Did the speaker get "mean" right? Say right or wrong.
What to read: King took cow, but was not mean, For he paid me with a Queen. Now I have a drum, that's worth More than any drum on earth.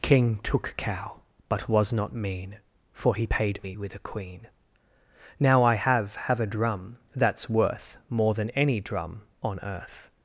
right